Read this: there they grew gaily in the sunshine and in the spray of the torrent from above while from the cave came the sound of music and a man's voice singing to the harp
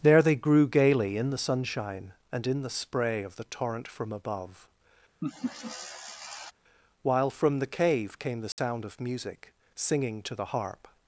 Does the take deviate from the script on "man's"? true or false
true